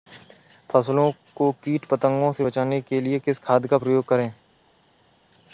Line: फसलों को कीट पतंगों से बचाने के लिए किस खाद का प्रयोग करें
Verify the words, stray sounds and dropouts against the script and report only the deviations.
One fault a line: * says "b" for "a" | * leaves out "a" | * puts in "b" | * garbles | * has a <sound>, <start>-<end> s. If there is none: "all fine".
all fine